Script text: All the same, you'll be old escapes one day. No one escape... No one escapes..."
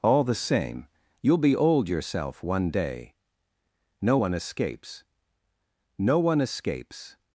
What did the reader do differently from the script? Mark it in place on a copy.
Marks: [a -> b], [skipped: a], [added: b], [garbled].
All the same, you'll be old [escapes -> yourself] one day. No one [escape... -> escapes] No one escapes..."